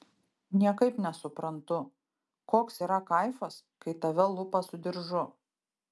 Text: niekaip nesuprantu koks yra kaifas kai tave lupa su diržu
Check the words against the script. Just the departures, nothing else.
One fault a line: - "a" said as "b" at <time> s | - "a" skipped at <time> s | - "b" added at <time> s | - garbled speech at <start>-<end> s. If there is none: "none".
none